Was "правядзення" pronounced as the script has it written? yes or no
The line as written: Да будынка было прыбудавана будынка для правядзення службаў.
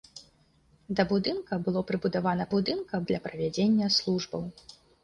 yes